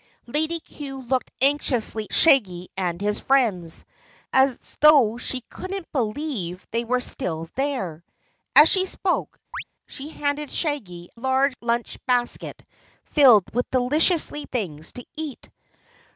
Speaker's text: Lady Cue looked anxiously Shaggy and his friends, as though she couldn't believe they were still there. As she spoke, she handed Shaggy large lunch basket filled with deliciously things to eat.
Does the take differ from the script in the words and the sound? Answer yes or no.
yes